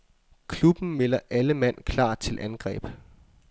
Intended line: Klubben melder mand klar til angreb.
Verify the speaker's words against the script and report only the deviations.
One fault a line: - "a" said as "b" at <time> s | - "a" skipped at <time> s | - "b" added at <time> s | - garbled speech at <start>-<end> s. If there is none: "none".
- "alle" added at 1.3 s